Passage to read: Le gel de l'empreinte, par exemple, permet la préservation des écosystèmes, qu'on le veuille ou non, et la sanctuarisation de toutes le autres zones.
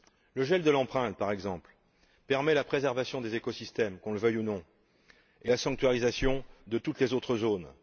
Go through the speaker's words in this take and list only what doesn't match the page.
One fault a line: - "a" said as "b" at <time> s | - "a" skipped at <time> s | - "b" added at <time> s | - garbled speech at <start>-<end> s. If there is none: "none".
- "le" said as "les" at 7.0 s